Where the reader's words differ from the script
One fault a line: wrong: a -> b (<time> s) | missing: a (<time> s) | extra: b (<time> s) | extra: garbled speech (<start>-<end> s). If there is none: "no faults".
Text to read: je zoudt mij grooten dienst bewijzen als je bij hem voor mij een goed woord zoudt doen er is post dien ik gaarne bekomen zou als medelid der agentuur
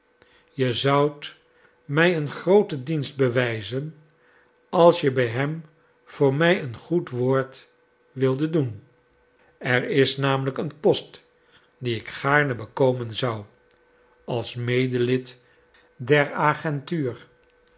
extra: een (2.2 s)
wrong: zoudt -> wildet (8.1 s)
extra: namelijk een (10.2 s)